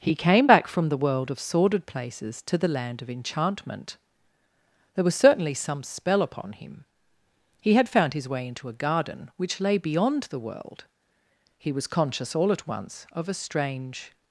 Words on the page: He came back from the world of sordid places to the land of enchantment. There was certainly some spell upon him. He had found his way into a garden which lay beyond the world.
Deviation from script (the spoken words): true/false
true